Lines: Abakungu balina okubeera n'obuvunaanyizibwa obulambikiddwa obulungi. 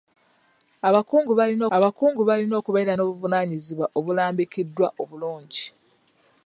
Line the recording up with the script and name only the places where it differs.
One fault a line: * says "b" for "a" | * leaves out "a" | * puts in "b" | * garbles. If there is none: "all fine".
* puts in "abakungu balina"